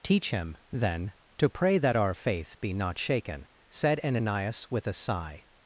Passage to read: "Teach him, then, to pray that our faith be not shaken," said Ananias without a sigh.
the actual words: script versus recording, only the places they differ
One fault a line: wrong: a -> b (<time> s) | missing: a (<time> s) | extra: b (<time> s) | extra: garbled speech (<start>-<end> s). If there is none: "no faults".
wrong: without -> with (4.7 s)